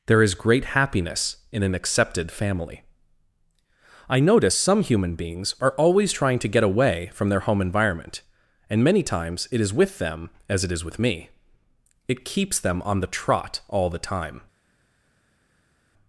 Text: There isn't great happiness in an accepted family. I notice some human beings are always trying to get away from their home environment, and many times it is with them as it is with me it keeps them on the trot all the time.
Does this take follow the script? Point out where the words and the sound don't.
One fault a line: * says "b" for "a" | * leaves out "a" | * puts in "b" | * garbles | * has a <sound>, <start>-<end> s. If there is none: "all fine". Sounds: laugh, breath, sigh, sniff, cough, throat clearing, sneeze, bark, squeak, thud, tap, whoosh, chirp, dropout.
* says "is" for "isn't"